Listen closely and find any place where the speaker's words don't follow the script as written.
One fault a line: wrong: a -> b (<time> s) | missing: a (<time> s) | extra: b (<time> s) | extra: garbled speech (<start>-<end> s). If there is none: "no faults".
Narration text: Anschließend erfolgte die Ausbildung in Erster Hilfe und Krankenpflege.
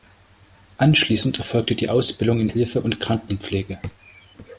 missing: Erster (2.5 s)